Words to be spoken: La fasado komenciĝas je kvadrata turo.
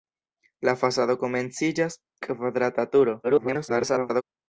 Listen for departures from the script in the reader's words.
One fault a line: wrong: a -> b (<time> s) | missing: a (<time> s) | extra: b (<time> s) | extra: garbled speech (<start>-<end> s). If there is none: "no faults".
missing: je (2.0 s)
extra: garbled speech (3.2-4.2 s)